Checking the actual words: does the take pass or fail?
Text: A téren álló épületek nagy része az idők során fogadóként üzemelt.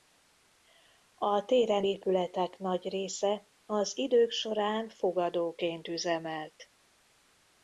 fail